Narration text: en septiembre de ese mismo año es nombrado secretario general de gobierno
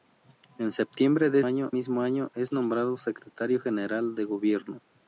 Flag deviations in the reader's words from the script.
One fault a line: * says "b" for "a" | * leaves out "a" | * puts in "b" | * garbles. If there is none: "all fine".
* says "año" for "ese"